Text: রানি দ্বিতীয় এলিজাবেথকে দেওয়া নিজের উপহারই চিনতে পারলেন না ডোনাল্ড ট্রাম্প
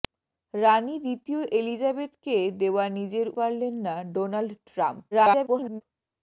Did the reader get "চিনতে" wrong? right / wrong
wrong